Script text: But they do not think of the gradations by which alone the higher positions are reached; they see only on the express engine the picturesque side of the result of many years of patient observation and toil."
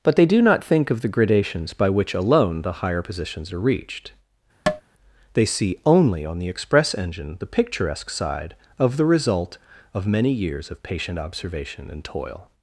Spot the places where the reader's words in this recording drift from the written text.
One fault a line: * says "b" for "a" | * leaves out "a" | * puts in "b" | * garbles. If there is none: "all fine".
all fine